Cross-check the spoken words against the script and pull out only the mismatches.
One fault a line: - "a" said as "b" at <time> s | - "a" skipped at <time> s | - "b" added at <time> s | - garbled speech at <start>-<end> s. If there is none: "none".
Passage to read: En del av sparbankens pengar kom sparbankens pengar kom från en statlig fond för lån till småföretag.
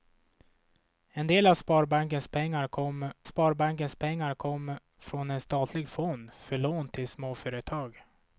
none